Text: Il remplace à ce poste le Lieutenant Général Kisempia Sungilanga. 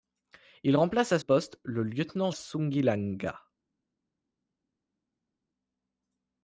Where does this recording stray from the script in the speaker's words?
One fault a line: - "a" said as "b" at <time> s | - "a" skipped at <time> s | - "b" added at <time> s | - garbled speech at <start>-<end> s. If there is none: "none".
- "ce" skipped at 1.2 s
- "Général Kisempia" skipped at 2.3 s